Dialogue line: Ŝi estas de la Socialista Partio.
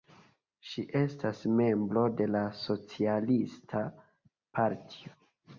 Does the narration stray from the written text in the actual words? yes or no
yes